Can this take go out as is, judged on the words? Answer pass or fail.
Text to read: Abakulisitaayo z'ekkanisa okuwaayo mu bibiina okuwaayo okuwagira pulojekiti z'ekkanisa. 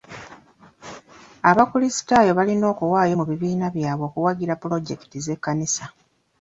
fail